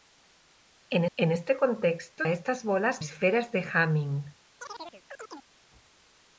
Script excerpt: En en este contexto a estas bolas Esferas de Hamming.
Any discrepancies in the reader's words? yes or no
no